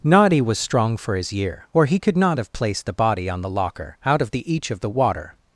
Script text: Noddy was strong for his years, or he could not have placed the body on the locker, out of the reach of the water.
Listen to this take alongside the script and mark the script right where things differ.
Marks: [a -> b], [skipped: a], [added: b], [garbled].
Noddy was strong for his [years, -> year] or he could not have placed the body on the locker, out of the [reach -> each] of the water.